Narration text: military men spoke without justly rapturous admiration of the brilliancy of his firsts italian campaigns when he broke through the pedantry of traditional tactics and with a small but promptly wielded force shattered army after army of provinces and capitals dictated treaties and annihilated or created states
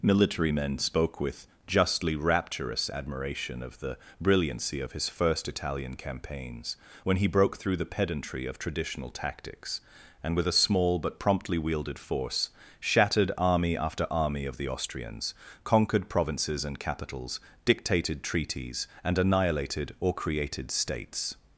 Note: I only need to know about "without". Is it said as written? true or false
false